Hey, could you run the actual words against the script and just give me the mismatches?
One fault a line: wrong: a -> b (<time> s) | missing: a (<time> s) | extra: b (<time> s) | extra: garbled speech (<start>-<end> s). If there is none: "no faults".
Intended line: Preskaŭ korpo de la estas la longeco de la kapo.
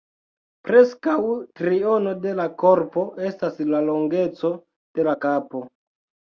wrong: korpo -> triono (1.6 s)
extra: korpo (2.6 s)